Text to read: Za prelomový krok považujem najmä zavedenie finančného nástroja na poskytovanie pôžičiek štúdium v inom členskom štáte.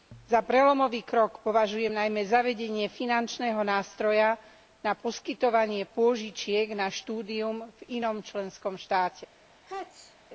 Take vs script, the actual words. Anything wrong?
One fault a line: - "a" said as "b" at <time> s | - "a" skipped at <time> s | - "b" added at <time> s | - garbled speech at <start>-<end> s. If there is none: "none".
- "na" added at 6.7 s